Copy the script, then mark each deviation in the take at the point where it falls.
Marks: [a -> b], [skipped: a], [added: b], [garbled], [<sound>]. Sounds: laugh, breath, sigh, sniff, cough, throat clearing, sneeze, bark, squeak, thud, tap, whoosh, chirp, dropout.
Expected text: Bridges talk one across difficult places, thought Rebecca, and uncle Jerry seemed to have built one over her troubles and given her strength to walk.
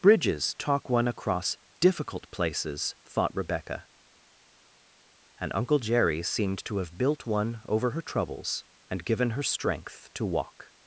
Bridges talk one across difficult places, thought Rebecca, and uncle Jerry seemed to have built one over her troubles and given her strength to walk.